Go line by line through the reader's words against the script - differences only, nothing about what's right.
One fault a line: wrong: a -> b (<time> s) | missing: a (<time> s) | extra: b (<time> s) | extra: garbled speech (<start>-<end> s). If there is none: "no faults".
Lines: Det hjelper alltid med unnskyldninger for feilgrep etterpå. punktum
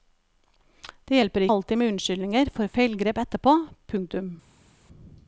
no faults